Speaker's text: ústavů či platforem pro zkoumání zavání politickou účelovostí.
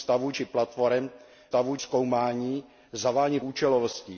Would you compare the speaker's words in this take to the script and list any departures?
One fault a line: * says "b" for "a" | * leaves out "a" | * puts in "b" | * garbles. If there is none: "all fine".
* says "ústavů" for "pro"
* leaves out "politickou"